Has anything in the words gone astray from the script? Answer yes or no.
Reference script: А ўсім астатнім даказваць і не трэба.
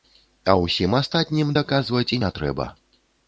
no